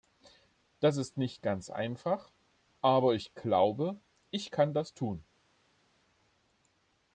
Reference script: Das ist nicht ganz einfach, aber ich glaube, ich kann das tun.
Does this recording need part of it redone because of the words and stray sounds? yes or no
no